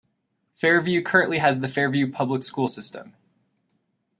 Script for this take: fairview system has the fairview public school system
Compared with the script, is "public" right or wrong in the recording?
right